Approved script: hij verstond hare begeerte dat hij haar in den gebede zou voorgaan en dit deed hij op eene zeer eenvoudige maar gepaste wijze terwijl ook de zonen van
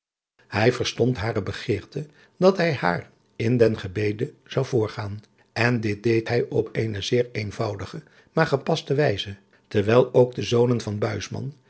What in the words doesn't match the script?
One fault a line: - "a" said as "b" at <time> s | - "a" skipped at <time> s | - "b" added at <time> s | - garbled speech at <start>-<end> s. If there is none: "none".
none